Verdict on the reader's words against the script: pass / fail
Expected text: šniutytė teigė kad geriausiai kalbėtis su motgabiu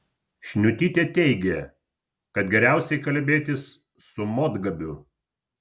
pass